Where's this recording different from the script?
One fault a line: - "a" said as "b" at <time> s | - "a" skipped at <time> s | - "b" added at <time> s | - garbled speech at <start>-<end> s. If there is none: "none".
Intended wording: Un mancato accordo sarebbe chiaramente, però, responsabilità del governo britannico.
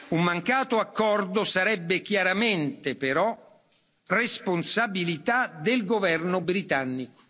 none